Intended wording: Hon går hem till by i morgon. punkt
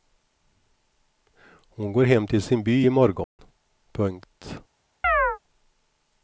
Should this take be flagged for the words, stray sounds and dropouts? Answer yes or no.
yes